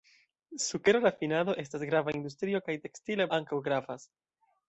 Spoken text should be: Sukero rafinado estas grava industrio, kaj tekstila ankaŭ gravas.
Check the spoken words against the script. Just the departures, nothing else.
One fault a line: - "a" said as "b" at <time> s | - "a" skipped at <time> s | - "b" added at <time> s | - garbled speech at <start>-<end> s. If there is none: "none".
none